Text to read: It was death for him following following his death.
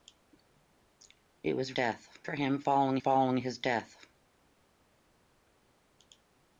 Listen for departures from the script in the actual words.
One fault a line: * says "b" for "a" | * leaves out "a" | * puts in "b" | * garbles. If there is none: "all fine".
all fine